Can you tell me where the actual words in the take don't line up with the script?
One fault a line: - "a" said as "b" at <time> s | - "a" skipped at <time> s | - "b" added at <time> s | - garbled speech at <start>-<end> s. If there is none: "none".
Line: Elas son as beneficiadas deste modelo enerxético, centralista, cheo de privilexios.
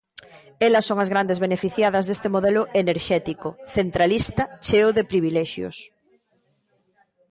- "grandes" added at 1.1 s